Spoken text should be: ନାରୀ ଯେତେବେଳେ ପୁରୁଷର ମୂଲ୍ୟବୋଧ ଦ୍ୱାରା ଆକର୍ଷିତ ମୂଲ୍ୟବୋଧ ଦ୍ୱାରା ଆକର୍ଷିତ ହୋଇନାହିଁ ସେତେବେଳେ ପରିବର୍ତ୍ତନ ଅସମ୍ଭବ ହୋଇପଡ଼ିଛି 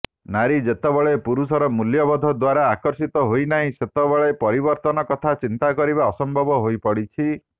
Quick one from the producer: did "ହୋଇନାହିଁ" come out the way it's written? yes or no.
no